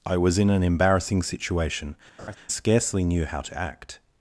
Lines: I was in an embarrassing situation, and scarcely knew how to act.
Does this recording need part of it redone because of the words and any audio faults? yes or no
yes